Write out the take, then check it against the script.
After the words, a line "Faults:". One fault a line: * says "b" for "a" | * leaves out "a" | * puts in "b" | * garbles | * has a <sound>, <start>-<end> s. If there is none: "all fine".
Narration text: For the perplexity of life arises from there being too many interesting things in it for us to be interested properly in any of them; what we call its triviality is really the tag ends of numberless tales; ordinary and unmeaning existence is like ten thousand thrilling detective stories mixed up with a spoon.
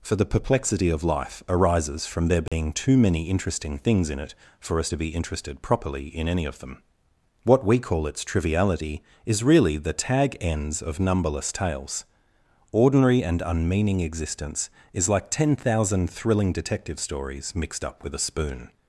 For the perplexity of life arises from there being too many interesting things in it for us to be interested properly in any of them; what we call its triviality is really the tag ends of numberless tales; ordinary and unmeaning existence is like ten thousand thrilling detective stories mixed up with a spoon.
Faults:
* has a dropout, 2.5-2.5 s